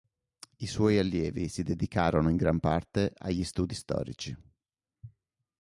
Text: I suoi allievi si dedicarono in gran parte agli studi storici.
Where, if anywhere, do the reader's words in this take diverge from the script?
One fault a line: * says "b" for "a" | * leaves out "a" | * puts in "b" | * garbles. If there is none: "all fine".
all fine